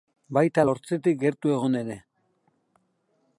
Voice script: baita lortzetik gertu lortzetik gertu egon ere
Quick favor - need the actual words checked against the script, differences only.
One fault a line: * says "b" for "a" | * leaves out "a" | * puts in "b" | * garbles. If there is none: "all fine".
* leaves out "lortzetik gertu"